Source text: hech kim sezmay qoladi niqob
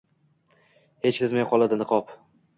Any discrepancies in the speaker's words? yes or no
yes